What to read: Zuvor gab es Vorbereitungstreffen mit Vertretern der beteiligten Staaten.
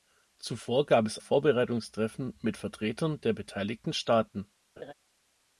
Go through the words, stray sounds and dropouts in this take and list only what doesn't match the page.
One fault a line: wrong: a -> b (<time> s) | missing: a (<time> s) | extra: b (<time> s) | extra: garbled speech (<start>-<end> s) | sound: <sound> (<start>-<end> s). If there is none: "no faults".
sound: laugh (4.8-4.9 s)